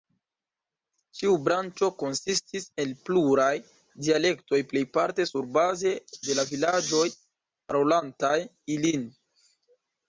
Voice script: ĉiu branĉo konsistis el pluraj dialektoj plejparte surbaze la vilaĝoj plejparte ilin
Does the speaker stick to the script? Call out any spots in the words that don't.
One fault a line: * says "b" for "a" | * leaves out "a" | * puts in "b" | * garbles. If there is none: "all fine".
* puts in "de"
* says "parolantaj" for "plejparte"